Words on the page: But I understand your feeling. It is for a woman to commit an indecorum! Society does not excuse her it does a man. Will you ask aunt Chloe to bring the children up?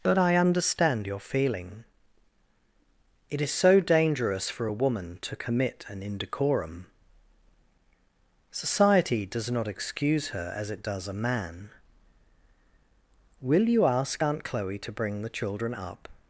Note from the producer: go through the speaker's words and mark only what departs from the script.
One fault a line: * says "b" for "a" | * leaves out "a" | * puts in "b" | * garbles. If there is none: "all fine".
* puts in "so dangerous"
* puts in "as"